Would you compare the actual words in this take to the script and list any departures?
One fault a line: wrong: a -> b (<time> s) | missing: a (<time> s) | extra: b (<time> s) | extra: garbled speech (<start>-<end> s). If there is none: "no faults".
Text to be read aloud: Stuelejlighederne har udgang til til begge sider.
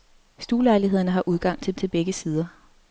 no faults